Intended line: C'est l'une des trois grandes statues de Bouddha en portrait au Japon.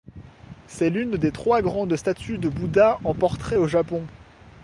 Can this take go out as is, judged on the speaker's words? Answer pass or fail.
pass